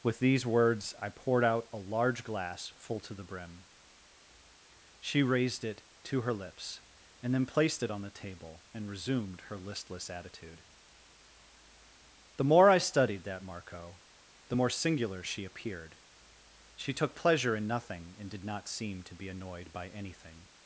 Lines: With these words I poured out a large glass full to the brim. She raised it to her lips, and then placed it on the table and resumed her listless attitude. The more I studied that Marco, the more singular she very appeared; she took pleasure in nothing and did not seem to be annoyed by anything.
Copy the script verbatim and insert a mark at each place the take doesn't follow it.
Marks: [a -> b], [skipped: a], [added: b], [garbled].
With these words I poured out a large glass full to the brim. She raised it to her lips, and then placed it on the table and resumed her listless attitude. The more I studied that Marco, the more singular she [skipped: very] appeared; she took pleasure in nothing and did not seem to be annoyed by anything.